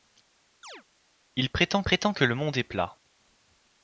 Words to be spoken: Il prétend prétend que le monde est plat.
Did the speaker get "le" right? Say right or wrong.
right